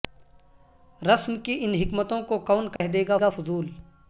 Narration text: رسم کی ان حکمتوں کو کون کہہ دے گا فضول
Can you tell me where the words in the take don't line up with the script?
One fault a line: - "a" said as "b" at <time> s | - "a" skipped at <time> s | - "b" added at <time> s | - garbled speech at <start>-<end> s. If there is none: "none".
- "گا" added at 3.2 s